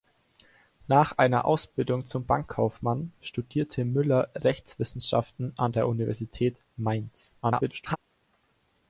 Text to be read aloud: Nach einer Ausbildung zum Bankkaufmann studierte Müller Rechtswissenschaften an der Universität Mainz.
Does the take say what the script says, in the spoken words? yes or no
no